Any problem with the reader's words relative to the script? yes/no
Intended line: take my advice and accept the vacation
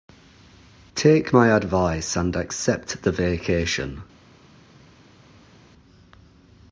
no